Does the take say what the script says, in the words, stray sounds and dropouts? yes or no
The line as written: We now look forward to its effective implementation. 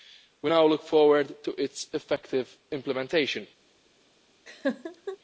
no